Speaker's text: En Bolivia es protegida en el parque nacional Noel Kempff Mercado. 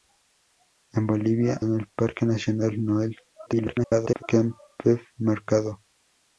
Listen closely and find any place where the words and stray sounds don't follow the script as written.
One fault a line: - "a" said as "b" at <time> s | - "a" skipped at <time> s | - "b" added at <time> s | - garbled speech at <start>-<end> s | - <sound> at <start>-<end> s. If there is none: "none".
- "es protegida" skipped at 1.6 s
- garbled speech at 3.5-4.2 s